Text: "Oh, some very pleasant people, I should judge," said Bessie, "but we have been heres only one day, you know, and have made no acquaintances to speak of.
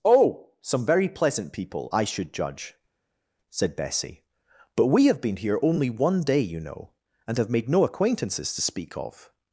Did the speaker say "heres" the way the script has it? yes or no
no